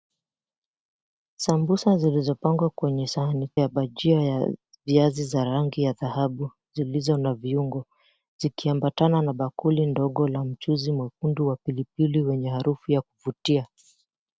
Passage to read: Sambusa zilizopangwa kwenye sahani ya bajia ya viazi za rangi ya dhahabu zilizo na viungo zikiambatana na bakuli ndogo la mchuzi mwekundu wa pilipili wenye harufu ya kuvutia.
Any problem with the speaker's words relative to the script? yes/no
no